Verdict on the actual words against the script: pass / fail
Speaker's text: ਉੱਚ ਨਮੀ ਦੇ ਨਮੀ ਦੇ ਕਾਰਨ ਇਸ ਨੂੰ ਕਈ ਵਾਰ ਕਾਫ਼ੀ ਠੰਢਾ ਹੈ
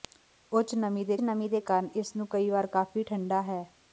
pass